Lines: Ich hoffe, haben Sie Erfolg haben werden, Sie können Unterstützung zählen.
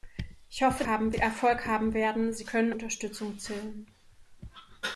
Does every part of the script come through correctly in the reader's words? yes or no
yes